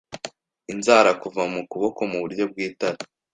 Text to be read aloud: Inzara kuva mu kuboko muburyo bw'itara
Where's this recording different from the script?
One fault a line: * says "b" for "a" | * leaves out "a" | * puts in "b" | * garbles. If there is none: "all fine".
all fine